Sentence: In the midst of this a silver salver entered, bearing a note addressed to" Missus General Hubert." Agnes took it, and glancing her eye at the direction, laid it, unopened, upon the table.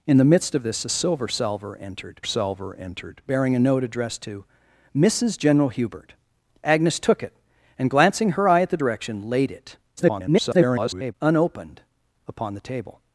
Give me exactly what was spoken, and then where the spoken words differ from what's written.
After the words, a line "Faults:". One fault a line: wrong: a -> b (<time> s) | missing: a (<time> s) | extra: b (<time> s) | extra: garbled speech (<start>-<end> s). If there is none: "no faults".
In the midst of this a silver salver entered salver entered, bearing a note addressed to" Missus General Hubert." Agnes took it, and glancing her eye at the direction, laid it, [garbled] unopened, upon the table.
Faults:
extra: salver entered (2.2 s)
extra: garbled speech (10.0-11.1 s)